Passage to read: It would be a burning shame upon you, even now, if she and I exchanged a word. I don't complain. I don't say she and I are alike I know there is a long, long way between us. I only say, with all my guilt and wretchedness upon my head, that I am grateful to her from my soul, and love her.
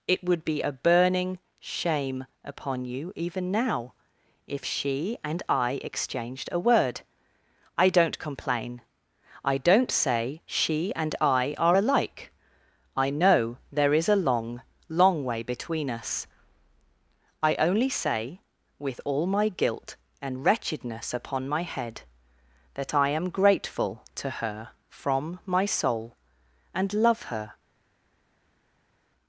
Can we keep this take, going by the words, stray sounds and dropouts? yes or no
yes